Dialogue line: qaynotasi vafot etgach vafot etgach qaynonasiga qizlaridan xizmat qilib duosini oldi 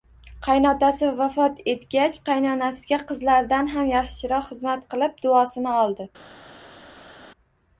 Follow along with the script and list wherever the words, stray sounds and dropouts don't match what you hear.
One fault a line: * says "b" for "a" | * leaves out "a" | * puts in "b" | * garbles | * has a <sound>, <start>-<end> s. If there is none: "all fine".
* says "qaynonasiga qizlaridan ham yaxshiroq" for "vafot etgach qaynonasiga qizlaridan"